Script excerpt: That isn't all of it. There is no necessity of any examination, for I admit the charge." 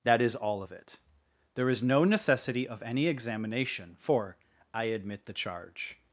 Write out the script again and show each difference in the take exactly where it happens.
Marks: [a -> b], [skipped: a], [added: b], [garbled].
That [isn't -> is] all of it. There is no necessity of any examination, for I admit the charge."